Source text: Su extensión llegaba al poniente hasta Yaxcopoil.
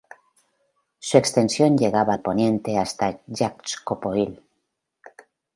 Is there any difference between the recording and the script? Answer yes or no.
no